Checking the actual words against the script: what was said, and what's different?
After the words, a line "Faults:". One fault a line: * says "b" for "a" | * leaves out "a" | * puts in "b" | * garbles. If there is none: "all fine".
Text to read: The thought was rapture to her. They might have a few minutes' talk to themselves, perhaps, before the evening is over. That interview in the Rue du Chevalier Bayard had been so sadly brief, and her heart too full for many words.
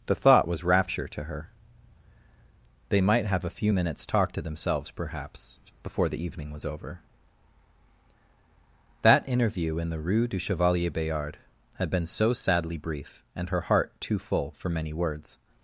The thought was rapture to her. They might have a few minutes' talk to themselves, perhaps, before the evening was over. That interview in the Rue du Chevalier Bayard had been so sadly brief, and her heart too full for many words.
Faults:
* says "was" for "is"